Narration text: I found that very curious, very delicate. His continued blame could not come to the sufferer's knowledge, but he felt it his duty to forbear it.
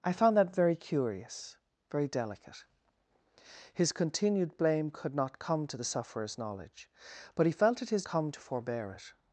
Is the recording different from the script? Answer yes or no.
yes